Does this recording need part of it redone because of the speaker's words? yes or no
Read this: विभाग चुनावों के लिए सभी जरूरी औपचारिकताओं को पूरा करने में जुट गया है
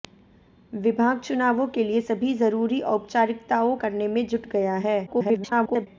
yes